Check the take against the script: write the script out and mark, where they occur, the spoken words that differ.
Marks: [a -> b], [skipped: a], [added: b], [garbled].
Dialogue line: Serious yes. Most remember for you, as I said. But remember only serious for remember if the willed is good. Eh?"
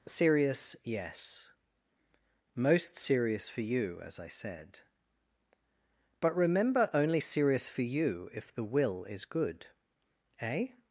Serious yes. Most [remember -> serious] for you, as I said. But remember only serious for [remember -> you] if the [willed -> will] is good. Eh?"